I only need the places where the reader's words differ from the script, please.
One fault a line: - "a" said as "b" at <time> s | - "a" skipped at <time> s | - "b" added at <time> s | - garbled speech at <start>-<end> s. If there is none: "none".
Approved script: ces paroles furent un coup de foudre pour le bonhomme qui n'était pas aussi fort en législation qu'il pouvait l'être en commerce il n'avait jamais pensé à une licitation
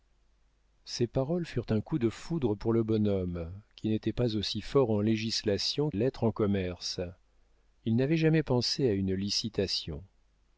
- "qu'il pouvait" skipped at 5.9 s